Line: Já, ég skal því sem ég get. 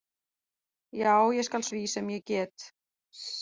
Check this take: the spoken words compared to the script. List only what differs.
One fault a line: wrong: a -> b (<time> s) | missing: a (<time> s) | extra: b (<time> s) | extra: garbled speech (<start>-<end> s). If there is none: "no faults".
no faults